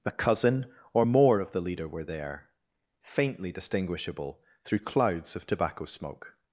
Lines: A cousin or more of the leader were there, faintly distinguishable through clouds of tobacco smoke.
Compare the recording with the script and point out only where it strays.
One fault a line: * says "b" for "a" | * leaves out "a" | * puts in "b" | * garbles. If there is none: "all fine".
all fine